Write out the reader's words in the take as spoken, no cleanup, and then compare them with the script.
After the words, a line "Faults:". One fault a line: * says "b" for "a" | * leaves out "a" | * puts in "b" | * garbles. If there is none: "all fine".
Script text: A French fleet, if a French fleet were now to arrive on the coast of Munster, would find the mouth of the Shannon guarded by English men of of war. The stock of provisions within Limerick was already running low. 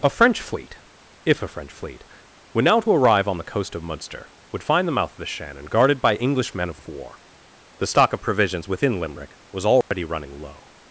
A French fleet, if a French fleet were now to arrive on the coast of Munster, would find the mouth of the Shannon guarded by English men of of war. The stock of provisions within Limerick was already running low.
Faults:
all fine